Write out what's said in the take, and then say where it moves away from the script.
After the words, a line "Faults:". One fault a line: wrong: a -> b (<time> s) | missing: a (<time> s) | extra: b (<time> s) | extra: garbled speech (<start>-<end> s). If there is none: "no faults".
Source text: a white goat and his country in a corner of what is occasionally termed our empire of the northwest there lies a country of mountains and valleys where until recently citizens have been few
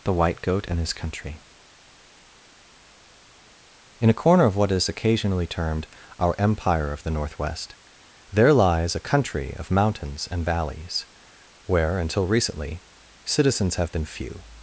the white goat and his country in a corner of what is occasionally termed our empire of the northwest there lies a country of mountains and valleys where until recently citizens have been few
Faults:
wrong: a -> the (0.0 s)